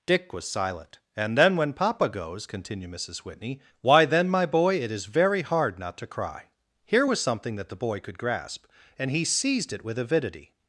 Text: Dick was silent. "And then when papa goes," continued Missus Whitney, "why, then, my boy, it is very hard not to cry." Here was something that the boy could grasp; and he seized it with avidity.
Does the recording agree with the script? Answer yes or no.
yes